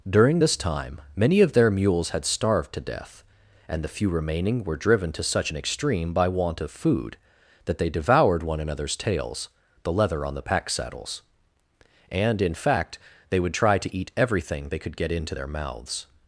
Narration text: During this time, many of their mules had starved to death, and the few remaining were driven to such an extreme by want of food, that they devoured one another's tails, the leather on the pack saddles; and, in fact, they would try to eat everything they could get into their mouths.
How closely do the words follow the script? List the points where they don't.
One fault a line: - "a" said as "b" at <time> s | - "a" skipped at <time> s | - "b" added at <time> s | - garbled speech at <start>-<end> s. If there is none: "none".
none